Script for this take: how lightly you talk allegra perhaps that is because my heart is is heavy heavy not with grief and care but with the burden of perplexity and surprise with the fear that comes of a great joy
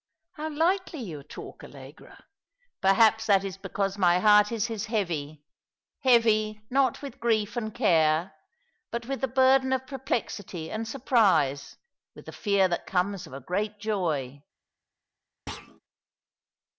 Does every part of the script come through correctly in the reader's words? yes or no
yes